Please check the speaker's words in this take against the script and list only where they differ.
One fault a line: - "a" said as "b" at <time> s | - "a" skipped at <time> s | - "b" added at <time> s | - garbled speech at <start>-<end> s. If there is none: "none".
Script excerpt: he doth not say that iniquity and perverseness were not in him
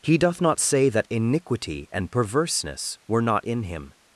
none